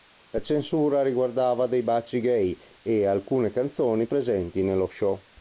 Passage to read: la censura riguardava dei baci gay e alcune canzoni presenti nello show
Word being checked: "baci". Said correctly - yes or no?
yes